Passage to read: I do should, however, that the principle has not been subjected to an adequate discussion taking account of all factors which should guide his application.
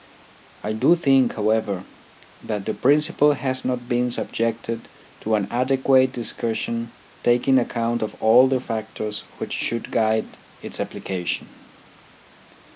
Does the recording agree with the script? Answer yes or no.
no